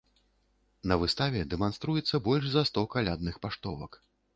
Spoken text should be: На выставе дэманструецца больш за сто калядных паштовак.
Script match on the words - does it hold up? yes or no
yes